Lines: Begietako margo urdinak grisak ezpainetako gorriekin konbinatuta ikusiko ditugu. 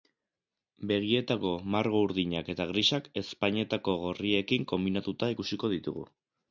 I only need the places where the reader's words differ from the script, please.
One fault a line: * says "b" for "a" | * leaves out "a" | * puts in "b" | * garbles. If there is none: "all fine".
* puts in "eta"